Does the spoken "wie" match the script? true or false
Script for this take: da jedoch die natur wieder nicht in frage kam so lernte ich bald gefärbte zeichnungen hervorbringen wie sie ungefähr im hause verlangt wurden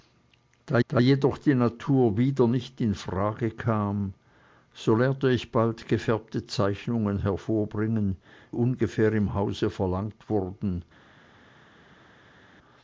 false